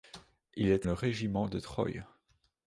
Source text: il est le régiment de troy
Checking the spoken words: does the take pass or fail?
pass